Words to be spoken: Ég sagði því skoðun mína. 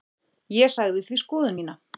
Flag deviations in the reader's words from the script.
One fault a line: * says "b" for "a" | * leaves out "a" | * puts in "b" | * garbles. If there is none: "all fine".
all fine